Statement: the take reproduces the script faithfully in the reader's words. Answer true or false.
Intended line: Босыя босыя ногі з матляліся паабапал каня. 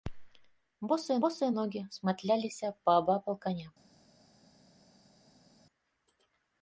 true